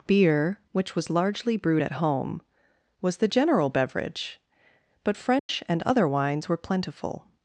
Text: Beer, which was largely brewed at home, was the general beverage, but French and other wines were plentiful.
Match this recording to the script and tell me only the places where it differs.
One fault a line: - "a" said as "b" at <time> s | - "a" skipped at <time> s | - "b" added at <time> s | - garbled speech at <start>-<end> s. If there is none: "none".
none